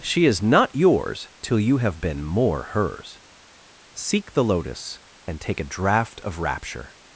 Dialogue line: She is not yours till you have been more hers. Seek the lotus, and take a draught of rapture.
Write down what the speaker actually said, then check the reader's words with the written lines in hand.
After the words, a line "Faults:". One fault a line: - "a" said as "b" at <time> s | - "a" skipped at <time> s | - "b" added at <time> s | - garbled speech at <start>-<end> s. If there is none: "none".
She is not yours till you have been more hers. Seek the lotus, and take a draught of rapture.
Faults:
none